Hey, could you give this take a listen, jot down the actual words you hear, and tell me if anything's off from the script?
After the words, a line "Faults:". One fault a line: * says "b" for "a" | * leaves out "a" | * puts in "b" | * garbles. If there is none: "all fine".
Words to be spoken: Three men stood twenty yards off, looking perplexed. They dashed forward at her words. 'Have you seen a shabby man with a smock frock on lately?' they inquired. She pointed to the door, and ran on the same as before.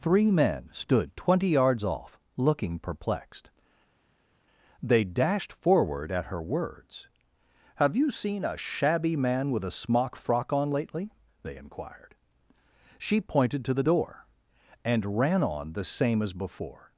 Three men stood twenty yards off, looking perplexed. They dashed forward at her words. 'Have you seen a shabby man with a smock frock on lately?' they inquired. She pointed to the door, and ran on the same as before.
Faults:
all fine